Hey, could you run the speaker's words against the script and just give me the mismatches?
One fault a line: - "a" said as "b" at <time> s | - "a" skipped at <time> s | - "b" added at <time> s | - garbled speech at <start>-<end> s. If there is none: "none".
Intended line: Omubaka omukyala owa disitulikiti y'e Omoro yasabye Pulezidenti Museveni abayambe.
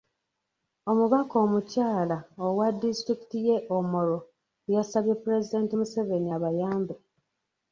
none